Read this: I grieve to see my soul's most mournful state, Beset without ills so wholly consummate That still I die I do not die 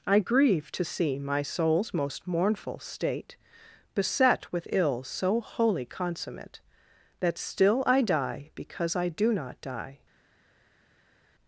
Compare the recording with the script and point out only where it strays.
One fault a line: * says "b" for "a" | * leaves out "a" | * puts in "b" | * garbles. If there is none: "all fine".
* says "with" for "without"
* puts in "because"